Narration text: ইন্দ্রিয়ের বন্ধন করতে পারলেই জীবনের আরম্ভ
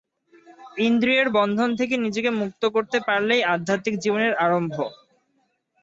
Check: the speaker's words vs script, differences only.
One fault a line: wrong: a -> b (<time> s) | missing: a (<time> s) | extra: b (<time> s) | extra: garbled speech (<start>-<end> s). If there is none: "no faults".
extra: থেকে নিজেকে মুক্ত (1.8 s)
extra: আধ্যাত্মিক (3.5 s)